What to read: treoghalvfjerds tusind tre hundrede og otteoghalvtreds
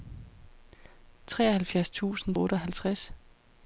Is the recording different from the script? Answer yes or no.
yes